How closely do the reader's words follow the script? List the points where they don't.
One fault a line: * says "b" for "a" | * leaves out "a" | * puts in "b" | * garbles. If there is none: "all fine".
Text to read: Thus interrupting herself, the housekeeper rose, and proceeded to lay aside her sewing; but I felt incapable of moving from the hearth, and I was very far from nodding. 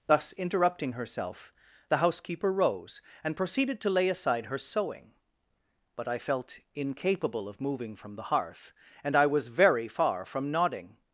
all fine